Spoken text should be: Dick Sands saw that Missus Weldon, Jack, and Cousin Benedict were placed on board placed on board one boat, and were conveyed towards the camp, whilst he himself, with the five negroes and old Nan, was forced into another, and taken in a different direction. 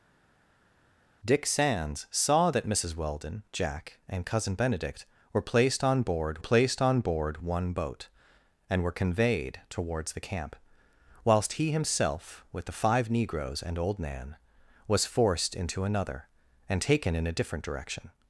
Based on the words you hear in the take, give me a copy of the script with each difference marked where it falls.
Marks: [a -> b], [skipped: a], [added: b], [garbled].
Dick Sands saw that Missus Weldon, Jack, and Cousin Benedict were placed on board placed on board one boat, and were conveyed towards the camp, whilst he himself, with the five negroes and old Nan, was forced into another, and taken in a different direction.